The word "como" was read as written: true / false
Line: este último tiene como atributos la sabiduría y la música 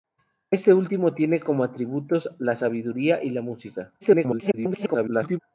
true